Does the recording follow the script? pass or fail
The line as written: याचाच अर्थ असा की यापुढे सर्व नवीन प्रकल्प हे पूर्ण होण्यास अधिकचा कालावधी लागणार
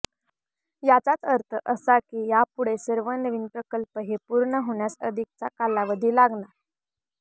pass